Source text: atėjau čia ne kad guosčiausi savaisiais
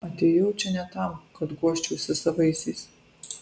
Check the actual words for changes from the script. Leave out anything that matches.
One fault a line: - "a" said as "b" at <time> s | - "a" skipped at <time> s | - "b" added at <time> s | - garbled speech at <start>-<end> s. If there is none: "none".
- "tam" added at 0.9 s